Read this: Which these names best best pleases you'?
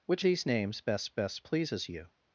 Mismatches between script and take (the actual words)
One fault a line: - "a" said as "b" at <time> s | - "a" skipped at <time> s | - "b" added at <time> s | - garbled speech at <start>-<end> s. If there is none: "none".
none